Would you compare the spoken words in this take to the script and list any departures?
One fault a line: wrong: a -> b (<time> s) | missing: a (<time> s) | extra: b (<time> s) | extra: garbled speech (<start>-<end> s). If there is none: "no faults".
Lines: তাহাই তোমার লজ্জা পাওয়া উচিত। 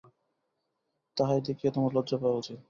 extra: দেখিয়া (1.5 s)